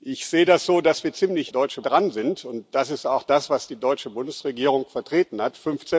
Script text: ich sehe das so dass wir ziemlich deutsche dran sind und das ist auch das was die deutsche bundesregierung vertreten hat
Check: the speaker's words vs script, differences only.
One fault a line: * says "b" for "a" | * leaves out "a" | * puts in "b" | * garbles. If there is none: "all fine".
all fine